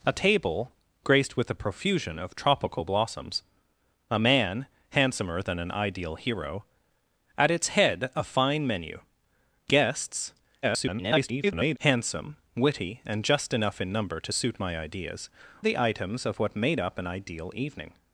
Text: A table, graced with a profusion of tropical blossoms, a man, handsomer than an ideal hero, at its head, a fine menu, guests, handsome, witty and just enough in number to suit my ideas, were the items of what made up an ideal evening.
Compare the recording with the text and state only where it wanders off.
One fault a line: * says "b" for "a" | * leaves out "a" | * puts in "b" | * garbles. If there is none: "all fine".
* garbles
* leaves out "were"